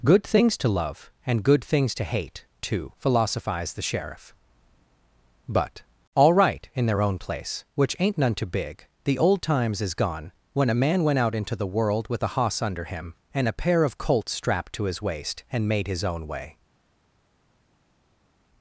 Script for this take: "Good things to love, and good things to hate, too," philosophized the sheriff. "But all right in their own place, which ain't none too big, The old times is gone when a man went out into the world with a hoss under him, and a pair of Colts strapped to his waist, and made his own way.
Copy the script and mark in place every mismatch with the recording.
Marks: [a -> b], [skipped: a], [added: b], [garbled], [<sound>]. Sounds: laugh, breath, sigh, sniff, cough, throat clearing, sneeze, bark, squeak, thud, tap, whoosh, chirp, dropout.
"Good things to love, and good things to hate, too," philosophized the sheriff. "But all right in their own place, which ain't none too big, The old times is gone when a man went out into the world with a hoss under him, and a pair of Colts strapped to his waist, and made his own way.